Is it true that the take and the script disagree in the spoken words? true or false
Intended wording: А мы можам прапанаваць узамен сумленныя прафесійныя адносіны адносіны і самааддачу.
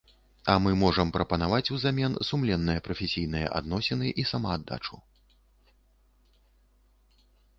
true